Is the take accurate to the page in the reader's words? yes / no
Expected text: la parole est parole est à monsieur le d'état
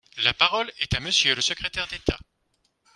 no